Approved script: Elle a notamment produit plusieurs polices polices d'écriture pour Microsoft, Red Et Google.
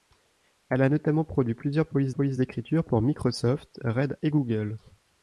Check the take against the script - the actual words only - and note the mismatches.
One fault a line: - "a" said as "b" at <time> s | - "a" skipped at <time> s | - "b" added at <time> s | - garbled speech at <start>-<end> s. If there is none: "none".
none